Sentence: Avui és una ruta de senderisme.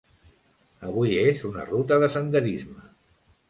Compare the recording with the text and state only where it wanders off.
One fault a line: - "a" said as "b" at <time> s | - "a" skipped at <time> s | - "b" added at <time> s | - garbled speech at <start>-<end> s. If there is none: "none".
none